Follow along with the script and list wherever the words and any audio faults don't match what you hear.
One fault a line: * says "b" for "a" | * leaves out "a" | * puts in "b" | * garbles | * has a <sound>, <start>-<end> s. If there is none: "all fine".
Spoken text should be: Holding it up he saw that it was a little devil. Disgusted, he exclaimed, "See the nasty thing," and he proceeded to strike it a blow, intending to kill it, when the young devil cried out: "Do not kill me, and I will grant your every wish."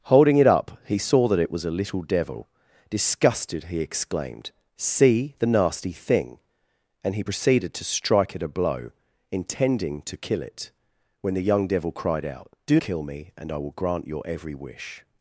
* leaves out "not"